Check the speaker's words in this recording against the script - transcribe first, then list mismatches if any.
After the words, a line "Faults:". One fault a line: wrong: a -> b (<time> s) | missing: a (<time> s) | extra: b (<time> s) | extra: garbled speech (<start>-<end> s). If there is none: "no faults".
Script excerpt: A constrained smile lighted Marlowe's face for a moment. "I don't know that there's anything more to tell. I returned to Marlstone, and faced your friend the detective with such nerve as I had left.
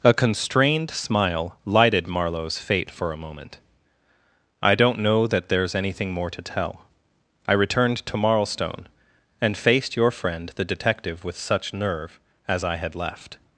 A constrained smile lighted Marlowe's fate for a moment. "I don't know that there's anything more to tell. I returned to Marlstone, and faced your friend the detective with such nerve as I had left.
Faults:
wrong: face -> fate (2.6 s)